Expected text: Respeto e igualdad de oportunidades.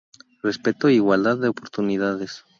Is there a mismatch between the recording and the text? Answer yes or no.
no